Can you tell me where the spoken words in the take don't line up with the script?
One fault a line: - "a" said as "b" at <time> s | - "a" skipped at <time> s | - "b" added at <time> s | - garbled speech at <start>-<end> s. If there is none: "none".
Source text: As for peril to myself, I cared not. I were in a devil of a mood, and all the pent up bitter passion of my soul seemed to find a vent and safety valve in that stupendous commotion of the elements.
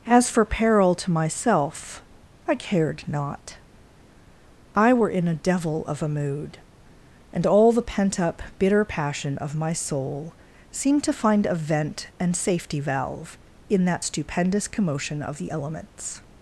none